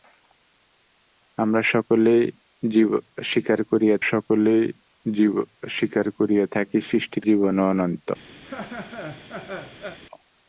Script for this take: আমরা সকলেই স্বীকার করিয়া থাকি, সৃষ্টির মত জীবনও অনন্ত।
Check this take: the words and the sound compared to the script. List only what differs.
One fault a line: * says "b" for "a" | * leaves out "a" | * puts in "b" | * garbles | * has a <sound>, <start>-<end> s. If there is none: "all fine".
* puts in "সকলেই স্বীকার করিয়া"
* leaves out "মত"
* has a laugh, 8.4-10.0 s